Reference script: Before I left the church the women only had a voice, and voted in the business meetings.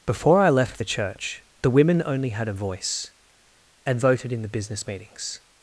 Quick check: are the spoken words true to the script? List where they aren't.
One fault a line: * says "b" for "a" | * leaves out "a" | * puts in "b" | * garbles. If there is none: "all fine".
all fine